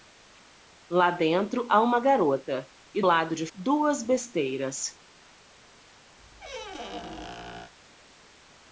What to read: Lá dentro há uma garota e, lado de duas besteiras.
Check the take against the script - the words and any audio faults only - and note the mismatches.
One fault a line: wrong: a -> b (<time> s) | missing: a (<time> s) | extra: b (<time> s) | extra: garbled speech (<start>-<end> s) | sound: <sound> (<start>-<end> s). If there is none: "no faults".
sound: squeak (6.2-7.7 s)